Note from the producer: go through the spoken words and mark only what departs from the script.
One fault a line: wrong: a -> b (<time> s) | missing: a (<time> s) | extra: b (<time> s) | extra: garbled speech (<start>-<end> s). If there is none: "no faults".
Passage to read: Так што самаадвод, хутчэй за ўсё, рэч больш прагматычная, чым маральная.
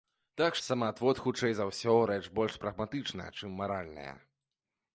missing: што (0.6 s)